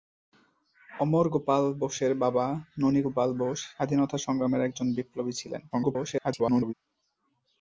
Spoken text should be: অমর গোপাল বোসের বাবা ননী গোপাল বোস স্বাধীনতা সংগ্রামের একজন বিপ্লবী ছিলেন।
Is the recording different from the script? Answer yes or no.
yes